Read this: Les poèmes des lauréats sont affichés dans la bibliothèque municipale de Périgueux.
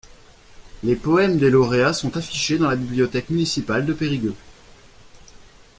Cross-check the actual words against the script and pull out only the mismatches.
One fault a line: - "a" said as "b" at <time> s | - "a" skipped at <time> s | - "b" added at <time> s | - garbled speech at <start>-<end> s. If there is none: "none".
none